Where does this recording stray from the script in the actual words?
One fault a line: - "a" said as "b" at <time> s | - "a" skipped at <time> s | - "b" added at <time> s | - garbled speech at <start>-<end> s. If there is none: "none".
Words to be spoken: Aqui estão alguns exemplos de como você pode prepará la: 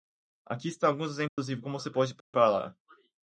none